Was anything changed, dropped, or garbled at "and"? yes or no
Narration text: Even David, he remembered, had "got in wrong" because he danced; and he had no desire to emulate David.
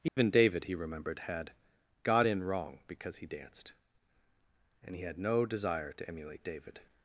no